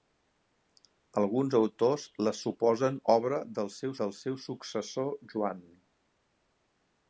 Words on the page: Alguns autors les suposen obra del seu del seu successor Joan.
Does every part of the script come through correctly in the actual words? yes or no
yes